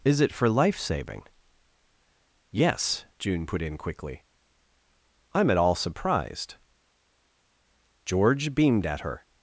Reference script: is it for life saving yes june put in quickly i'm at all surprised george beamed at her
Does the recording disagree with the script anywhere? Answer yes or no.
no